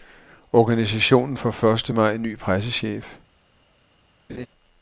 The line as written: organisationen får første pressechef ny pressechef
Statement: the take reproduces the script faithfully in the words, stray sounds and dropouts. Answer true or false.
false